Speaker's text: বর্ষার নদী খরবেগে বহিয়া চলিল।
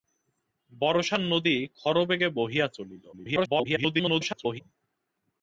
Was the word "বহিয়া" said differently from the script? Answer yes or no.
no